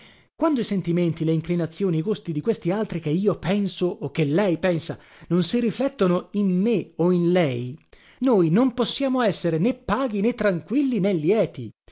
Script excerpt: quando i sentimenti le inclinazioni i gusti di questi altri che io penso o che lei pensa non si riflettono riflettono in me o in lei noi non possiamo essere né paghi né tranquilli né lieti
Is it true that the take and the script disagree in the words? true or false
true